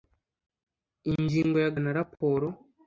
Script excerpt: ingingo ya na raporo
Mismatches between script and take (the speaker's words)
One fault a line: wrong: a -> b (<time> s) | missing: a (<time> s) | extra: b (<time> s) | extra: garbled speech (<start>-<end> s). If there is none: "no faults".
no faults